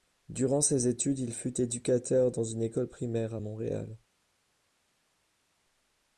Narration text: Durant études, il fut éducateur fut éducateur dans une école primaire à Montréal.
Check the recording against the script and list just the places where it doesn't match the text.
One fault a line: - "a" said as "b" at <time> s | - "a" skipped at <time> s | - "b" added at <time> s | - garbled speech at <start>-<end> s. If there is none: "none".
- "ses" added at 0.6 s
- "fut éducateur" skipped at 2.3 s